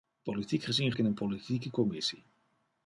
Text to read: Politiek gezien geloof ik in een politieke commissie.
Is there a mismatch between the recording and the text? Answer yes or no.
yes